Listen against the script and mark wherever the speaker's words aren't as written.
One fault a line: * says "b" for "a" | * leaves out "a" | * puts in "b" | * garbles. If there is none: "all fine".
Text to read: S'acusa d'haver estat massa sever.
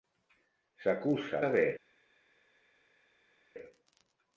* leaves out "d'haver estat massa"